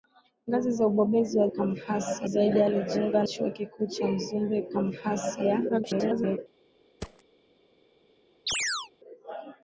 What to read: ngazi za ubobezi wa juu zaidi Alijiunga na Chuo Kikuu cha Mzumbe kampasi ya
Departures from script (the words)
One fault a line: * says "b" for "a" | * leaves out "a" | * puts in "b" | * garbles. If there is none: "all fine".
* says "kampasi" for "juu"
* leaves out "na"
* garbles